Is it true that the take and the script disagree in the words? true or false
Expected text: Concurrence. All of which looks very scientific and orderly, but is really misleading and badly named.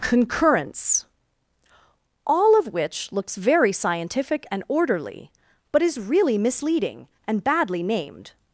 false